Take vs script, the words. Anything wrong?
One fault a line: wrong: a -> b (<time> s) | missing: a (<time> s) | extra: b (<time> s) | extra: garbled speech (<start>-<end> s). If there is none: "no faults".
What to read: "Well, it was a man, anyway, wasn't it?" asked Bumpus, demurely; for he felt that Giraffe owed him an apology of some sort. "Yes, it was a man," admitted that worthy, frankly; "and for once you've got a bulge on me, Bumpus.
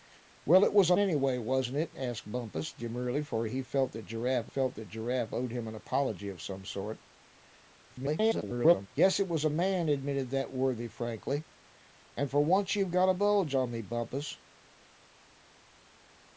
missing: man (1.0 s)
extra: felt that Giraffe (4.4 s)
extra: garbled speech (7.9-8.9 s)